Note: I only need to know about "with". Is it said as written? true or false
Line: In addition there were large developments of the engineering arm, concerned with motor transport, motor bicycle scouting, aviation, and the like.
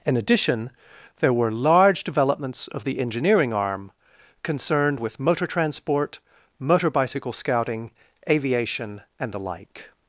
true